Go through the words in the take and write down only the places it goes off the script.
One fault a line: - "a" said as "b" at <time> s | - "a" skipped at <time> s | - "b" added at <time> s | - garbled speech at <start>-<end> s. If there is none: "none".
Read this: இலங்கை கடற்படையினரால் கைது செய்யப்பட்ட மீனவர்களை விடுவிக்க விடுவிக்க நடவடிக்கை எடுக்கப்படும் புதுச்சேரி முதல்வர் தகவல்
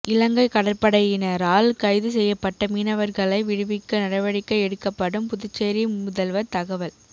- "விடுவிக்க" skipped at 4.0 s